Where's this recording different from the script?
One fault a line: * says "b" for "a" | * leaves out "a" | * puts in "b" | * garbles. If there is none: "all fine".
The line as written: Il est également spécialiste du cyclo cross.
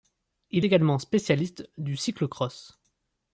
* leaves out "est"